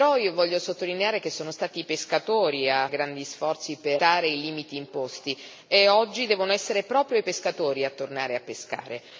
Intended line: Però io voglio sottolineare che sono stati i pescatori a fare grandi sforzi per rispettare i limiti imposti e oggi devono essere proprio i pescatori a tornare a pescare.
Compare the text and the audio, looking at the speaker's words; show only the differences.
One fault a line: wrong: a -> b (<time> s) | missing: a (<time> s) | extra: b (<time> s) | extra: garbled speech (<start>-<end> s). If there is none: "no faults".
missing: fare (2.9 s)